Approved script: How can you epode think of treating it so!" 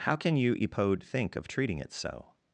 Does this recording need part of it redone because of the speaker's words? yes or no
no